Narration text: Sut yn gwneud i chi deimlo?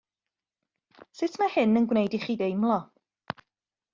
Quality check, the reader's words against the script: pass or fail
fail